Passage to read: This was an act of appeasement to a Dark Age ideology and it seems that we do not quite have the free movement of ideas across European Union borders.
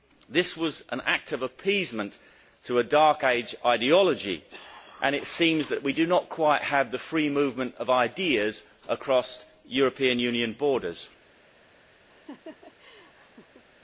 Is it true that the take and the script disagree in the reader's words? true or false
false